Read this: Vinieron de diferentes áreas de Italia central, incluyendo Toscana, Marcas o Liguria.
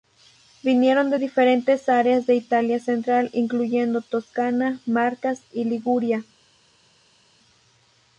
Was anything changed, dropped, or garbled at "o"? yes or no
yes